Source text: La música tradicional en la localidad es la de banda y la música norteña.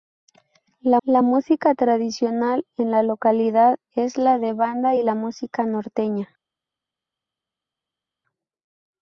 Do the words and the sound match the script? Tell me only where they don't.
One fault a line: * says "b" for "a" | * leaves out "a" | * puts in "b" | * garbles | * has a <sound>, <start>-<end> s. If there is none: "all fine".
* puts in "la"